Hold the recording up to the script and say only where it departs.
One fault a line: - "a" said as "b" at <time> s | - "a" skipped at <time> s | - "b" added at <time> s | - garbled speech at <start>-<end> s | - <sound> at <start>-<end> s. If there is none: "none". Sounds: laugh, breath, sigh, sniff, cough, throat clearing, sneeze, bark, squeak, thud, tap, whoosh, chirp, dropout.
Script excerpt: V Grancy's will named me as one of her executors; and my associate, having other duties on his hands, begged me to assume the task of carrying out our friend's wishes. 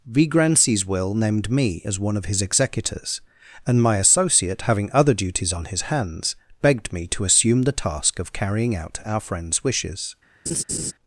- "her" said as "his" at 2.3 s
- laugh at 10.5-10.9 s